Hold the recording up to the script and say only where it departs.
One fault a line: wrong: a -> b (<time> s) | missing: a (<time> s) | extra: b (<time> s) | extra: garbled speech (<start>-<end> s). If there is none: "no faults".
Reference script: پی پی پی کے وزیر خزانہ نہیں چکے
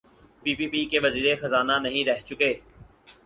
extra: رہ (2.1 s)